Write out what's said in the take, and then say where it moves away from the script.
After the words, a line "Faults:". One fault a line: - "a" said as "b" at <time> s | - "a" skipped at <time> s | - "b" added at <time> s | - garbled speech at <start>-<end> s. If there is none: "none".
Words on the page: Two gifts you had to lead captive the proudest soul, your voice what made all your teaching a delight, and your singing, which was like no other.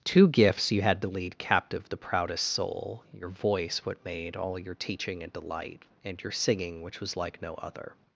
Two gifts you had to lead captive the proudest soul, your voice what made all your teaching a delight, and your singing, which was like no other.
Faults:
none